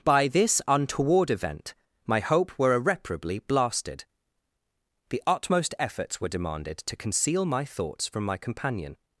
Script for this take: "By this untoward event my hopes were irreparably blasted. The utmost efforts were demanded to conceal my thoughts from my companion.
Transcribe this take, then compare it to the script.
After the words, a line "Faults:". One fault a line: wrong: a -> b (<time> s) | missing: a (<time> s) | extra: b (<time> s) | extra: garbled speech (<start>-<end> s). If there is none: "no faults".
"By this untoward event my hope were irreparably blasted. The utmost efforts were demanded to conceal my thoughts from my companion.
Faults:
wrong: hopes -> hope (2.2 s)